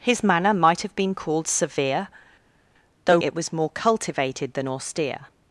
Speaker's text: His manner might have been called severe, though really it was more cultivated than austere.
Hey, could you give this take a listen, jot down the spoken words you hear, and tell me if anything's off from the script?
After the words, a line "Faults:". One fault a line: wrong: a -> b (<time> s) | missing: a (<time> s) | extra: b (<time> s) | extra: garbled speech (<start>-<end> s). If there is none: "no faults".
His manner might have been called severe, though it was more cultivated than austere.
Faults:
missing: really (3.2 s)